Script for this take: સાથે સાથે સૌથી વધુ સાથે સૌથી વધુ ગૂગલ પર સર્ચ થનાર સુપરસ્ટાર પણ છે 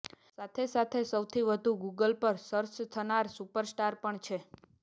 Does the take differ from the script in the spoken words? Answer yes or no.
yes